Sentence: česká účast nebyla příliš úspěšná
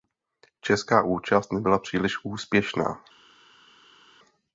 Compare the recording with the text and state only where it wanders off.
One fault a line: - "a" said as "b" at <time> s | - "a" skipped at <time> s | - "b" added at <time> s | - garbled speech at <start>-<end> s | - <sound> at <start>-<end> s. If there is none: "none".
none